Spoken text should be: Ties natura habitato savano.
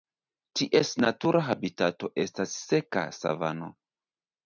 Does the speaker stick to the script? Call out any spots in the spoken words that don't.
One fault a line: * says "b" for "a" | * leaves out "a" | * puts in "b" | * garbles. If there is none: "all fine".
* puts in "estas seka"